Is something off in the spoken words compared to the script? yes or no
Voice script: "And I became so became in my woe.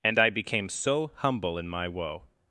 yes